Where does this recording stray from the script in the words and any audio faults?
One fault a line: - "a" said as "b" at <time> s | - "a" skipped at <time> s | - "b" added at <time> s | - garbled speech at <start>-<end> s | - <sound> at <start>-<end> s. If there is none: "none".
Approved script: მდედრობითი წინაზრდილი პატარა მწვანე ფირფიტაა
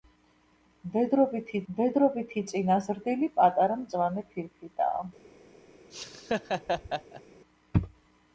- "მდედრობითი" added at 1.7 s
- laugh at 5.9-7.2 s